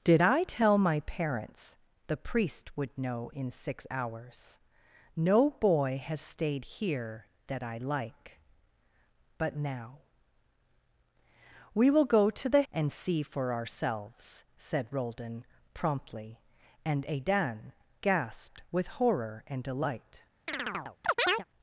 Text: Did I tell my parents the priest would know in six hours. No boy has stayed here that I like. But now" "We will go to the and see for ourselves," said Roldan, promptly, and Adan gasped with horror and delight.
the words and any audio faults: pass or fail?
fail